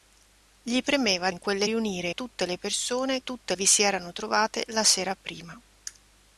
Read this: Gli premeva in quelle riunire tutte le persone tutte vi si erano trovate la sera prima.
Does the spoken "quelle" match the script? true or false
true